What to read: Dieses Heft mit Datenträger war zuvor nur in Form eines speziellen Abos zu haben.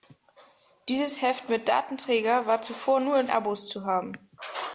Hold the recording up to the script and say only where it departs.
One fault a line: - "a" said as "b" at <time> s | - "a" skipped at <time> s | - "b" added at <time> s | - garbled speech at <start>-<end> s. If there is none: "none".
- "Form eines speziellen" skipped at 3.3 s